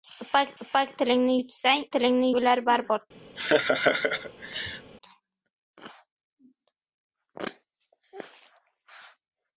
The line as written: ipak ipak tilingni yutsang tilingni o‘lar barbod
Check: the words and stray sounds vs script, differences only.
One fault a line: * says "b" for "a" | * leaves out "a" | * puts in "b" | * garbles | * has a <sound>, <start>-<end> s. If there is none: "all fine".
* has a laugh, 3.4-4.9 s